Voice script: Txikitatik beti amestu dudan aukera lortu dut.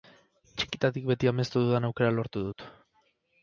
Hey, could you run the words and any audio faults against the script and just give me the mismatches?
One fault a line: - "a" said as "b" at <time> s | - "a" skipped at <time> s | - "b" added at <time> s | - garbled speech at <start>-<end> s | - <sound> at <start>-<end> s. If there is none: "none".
none